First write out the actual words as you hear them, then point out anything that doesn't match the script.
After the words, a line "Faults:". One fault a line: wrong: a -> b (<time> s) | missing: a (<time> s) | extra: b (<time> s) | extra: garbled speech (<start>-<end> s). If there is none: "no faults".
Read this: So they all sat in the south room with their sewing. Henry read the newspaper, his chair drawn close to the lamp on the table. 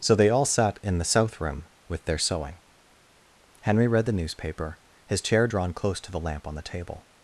So they all sat in the south room with their sewing. Henry read the newspaper, his chair drawn close to the lamp on the table.
Faults:
no faults